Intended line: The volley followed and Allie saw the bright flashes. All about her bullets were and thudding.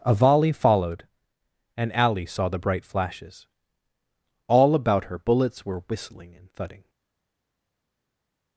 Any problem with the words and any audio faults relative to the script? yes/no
yes